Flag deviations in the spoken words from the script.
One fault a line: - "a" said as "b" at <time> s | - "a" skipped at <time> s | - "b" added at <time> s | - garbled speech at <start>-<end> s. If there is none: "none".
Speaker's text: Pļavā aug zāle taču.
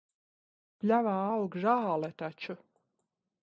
none